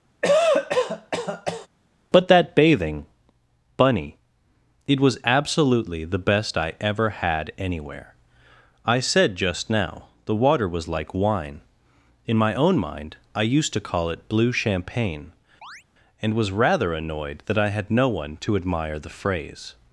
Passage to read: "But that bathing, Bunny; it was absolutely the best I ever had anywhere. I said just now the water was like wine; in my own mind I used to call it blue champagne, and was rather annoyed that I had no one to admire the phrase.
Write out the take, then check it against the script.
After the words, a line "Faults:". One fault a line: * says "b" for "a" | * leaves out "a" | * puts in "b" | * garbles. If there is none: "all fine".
"But that bathing, Bunny; it was absolutely the best I ever had anywhere. I said just now the water was like wine; in my own mind I used to call it blue champagne, and was rather annoyed that I had no one to admire the phrase.
Faults:
all fine